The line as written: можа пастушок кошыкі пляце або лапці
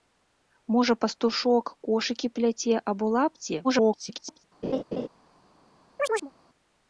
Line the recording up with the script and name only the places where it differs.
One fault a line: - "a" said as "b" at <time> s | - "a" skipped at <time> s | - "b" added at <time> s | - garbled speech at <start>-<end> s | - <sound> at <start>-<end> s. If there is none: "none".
- garbled speech at 3.6-4.4 s
- laugh at 4.6-5.1 s
- chirp at 6.0-6.3 s